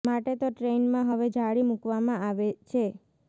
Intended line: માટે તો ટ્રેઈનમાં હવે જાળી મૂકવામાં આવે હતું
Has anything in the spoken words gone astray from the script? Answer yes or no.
yes